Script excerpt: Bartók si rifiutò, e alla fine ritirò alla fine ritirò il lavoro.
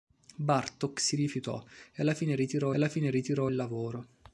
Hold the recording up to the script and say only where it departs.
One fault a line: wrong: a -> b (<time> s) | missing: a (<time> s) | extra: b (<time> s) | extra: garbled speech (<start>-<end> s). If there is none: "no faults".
no faults